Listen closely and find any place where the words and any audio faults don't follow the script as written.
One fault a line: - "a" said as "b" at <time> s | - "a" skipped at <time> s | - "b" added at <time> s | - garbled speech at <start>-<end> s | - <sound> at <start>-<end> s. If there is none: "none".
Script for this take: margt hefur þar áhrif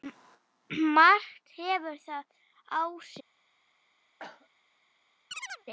- cough at 4.2-4.5 s
- chirp at 5.3-5.7 s